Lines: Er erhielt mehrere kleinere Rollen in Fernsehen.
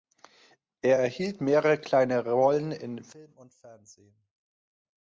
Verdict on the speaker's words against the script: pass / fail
fail